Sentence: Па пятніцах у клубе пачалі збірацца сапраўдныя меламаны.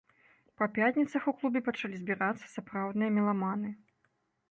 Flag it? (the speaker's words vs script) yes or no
no